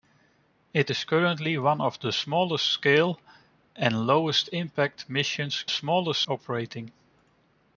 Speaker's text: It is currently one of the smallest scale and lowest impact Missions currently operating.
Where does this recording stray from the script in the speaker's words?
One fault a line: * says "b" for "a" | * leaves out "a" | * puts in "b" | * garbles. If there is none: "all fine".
* says "smallest" for "currently"